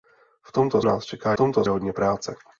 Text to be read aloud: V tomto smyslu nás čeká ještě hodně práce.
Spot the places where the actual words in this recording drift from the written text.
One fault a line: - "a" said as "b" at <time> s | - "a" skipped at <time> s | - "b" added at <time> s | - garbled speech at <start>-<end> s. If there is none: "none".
- "smyslu" skipped at 0.8 s
- "ještě" said as "tomto" at 1.3 s